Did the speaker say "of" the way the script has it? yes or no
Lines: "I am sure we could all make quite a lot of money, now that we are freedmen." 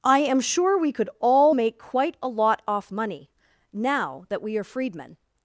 no